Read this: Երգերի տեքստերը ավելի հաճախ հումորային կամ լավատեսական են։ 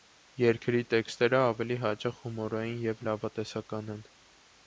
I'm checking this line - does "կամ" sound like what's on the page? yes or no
no